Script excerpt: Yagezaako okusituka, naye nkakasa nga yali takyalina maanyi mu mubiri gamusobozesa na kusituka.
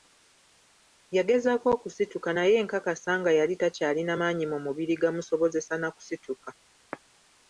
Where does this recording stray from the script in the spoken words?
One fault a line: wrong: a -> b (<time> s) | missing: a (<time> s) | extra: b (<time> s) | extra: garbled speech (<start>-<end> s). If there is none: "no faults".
no faults